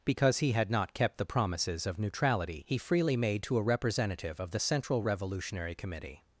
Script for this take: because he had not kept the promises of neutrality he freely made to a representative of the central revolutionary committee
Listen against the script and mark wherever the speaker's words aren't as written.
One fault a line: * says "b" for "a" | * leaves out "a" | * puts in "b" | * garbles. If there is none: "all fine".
all fine